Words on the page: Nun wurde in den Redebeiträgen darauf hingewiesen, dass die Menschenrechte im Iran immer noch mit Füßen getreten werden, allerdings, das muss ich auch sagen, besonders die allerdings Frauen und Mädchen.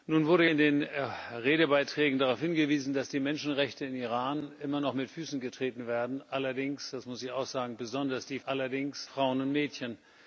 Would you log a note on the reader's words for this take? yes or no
no